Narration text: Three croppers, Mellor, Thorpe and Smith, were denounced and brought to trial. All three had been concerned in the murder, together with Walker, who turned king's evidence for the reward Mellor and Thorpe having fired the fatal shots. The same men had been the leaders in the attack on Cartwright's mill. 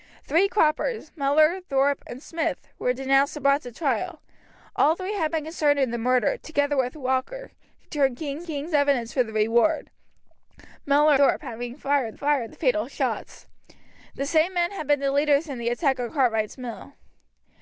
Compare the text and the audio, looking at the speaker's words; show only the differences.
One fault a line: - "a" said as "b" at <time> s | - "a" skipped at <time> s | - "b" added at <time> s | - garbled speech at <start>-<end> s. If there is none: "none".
- "king's" added at 8.4 s
- "and" skipped at 11.2 s
- "fired" added at 12.1 s